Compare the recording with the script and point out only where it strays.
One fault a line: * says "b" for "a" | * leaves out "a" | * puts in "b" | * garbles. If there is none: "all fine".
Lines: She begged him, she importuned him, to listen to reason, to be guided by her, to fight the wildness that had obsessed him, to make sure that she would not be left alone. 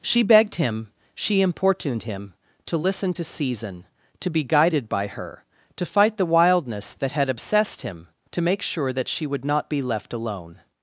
* says "season" for "reason"